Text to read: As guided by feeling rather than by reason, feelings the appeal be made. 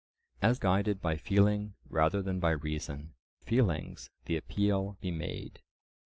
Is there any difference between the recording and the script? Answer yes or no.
no